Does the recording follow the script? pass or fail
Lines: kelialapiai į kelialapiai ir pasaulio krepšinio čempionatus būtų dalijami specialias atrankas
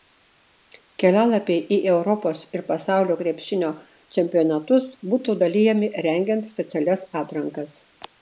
fail